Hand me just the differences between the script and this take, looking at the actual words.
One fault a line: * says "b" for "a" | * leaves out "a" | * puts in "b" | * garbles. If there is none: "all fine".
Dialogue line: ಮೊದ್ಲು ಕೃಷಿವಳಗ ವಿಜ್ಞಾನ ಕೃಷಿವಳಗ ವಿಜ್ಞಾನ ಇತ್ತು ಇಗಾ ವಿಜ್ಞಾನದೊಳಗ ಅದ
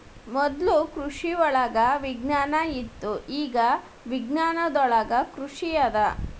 * leaves out "ಕೃಷಿವಳಗ ವಿಜ್ಞಾನ"
* puts in "ಕೃಷಿ"